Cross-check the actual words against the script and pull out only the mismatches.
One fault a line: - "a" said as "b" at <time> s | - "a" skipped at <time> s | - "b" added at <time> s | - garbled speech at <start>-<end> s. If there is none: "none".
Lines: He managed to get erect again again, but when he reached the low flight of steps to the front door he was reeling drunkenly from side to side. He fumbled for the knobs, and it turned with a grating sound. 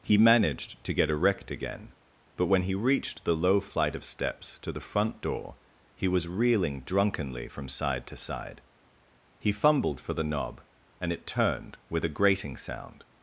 - "again" skipped at 1.9 s
- "knobs" said as "knob" at 10.2 s